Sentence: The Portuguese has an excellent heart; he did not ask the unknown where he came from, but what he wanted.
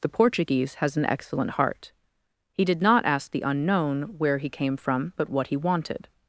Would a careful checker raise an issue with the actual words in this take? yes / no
no